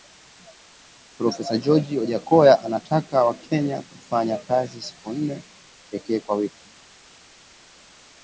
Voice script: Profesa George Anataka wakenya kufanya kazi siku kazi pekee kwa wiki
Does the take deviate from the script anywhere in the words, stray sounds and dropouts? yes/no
yes